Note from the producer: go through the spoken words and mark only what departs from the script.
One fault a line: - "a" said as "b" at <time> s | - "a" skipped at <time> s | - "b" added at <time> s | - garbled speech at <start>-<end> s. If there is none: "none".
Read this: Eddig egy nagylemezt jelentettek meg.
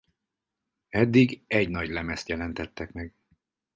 none